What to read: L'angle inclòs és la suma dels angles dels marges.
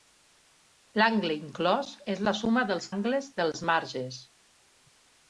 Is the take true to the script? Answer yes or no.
yes